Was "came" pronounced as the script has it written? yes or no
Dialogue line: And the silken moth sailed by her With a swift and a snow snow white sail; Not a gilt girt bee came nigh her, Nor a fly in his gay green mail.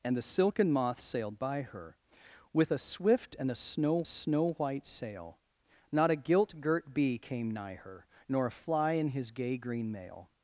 yes